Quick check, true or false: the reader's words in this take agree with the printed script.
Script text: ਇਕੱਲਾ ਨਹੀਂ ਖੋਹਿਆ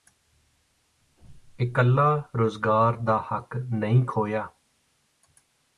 false